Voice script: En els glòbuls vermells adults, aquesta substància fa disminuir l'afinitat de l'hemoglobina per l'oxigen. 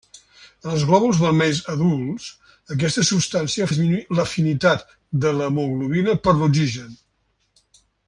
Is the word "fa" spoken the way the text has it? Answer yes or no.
no